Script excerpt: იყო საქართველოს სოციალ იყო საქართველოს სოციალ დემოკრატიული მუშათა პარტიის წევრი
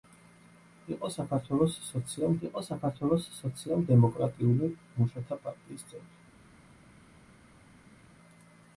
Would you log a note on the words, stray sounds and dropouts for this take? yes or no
no